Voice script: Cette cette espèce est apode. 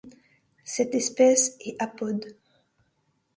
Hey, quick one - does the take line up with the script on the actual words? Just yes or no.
no